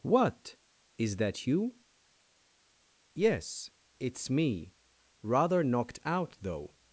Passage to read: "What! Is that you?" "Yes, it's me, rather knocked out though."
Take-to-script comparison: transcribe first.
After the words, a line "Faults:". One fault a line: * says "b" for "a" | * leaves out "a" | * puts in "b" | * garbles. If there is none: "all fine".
"What! Is that you?" "Yes, it's me, rather knocked out though."
Faults:
all fine